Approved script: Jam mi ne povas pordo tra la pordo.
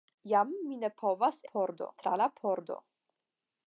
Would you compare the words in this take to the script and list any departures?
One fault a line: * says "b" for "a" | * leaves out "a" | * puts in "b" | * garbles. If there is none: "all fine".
all fine